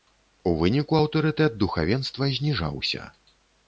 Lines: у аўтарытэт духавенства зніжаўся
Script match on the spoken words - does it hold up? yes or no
no